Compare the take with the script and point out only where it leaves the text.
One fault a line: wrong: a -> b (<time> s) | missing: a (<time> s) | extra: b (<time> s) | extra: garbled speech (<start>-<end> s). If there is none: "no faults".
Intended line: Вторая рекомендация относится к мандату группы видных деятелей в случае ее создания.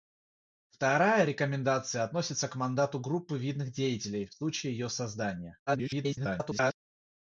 extra: garbled speech (5.7-6.8 s)